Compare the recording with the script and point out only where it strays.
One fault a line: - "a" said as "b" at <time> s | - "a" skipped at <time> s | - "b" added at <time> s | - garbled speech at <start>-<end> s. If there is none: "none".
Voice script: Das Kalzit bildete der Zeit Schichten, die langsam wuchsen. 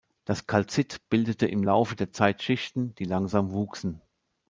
- "im Laufe" added at 1.4 s